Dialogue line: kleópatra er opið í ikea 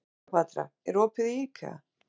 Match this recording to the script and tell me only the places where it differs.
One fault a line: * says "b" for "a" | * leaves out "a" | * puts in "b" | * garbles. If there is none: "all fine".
all fine